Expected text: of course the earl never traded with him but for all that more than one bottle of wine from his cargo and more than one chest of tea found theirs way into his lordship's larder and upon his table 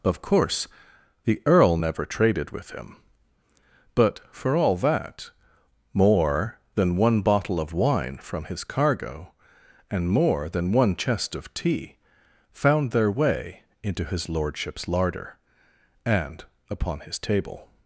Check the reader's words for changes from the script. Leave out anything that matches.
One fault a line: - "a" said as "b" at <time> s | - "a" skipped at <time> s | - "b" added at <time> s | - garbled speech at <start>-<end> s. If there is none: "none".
- "theirs" said as "their" at 12.9 s